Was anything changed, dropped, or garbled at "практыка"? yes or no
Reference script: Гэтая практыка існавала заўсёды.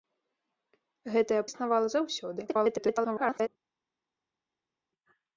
yes